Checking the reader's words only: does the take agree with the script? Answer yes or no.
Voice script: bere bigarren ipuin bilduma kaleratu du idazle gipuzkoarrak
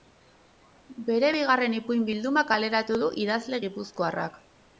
yes